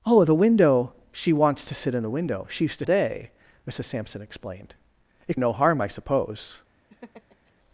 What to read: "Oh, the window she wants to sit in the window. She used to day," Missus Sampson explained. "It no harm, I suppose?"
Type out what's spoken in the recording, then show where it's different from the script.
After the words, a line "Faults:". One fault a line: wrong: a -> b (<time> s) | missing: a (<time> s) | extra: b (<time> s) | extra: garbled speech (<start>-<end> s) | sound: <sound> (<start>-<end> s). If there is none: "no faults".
"Oh, the window she wants to sit in the window. She used to day," Missus Sampson explained. "It no harm, I suppose?"
Faults:
sound: laugh (6.9-7.5 s)